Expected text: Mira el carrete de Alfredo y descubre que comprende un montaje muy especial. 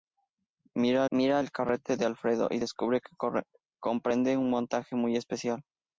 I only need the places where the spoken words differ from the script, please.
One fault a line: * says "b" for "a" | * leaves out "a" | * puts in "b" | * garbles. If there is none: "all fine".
* puts in "mira"